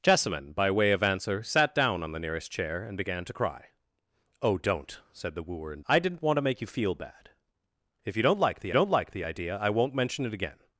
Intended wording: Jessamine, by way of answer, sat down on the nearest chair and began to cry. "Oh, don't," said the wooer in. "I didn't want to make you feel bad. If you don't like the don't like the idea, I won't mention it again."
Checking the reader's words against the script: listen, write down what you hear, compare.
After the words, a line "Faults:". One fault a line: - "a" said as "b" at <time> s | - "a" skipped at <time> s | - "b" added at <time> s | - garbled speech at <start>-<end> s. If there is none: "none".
Jessamine, by way of answer, sat down on the nearest chair and began to cry. "Oh, don't," said the wooer in. "I didn't want to make you feel bad. If you don't like the don't like the idea, I won't mention it again."
Faults:
none